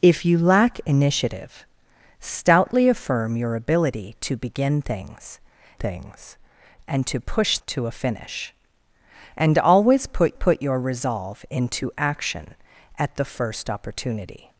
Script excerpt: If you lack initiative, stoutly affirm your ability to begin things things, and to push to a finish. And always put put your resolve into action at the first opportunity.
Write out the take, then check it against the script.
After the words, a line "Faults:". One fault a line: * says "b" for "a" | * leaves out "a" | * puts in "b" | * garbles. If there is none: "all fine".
If you lack initiative, stoutly affirm your ability to begin things things, and to push to a finish. And always put put your resolve into action at the first opportunity.
Faults:
all fine